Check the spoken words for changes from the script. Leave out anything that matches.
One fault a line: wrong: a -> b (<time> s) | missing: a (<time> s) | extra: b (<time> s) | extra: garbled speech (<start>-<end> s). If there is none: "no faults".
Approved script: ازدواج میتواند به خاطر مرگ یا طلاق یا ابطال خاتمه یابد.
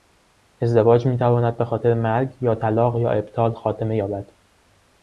no faults